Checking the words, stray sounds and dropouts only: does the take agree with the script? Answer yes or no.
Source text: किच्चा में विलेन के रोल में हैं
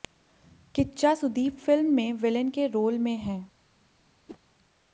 no